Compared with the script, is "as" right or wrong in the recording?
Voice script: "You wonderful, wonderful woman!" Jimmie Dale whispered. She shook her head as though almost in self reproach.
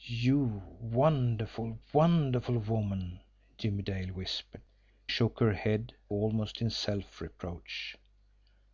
wrong